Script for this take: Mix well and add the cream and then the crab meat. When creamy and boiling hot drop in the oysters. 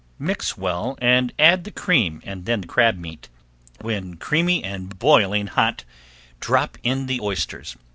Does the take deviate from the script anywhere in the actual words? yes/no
no